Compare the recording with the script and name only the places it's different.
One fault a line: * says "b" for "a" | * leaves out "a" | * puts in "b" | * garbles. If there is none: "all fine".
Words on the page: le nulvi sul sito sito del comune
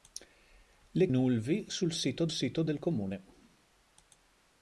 all fine